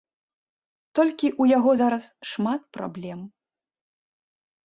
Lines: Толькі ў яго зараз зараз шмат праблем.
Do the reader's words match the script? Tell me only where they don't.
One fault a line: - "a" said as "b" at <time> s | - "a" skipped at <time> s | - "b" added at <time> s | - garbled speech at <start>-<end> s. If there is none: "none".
- "зараз" skipped at 2.0 s